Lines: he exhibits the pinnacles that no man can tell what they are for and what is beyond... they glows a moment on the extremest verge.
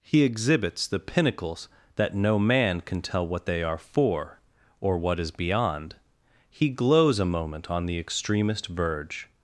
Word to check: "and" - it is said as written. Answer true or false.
false